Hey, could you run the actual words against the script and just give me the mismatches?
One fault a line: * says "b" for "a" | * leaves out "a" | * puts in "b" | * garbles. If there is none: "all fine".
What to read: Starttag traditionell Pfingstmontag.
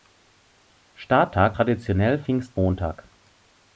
all fine